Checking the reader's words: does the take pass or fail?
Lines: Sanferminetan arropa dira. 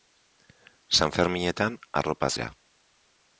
pass